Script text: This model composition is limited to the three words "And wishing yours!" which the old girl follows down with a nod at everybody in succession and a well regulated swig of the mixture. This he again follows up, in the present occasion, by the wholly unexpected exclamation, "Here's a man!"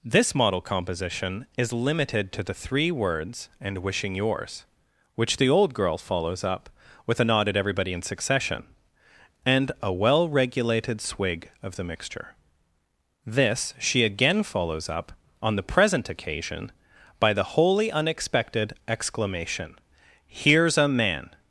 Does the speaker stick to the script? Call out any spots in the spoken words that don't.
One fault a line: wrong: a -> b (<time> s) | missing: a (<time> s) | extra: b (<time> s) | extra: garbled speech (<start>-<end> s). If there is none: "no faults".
wrong: down -> up (6.4 s)
wrong: he -> she (13.8 s)
wrong: in -> on (15.4 s)